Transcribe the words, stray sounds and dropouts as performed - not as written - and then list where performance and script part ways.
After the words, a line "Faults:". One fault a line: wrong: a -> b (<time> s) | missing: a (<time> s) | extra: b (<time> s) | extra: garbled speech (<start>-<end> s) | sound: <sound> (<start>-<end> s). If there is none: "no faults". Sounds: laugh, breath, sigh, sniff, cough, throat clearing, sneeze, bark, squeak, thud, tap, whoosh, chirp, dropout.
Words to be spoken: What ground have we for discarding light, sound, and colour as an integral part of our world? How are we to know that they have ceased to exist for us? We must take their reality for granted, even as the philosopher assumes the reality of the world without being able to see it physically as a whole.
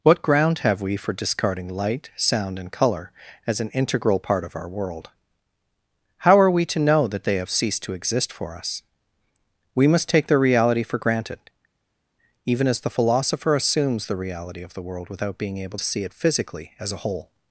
What ground have we for discarding light, sound, and colour as an integral part of our world? How are we to know that they have ceased to exist for us? We must take their reality for granted, even as the philosopher assumes the reality of the world without being able to see it physically as a whole.
Faults:
no faults